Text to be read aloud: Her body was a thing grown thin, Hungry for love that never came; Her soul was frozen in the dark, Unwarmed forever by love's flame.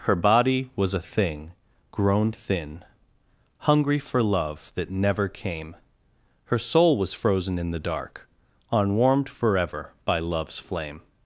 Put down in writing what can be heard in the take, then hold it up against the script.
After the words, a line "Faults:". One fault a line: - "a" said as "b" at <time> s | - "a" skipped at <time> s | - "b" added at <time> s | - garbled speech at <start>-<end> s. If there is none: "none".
Her body was a thing grown thin, Hungry for love that never came; Her soul was frozen in the dark, Unwarmed forever by love's flame.
Faults:
none